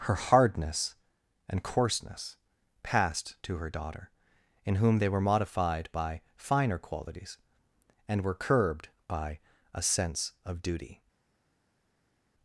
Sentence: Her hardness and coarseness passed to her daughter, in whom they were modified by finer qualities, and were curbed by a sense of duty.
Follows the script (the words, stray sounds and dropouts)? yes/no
yes